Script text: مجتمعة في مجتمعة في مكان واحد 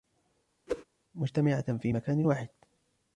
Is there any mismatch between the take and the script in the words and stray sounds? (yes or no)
yes